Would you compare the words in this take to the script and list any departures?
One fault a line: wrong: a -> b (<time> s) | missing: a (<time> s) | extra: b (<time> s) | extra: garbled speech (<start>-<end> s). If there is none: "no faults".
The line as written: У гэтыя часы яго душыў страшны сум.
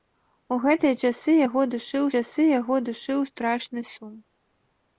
extra: часы яго душыў (2.2 s)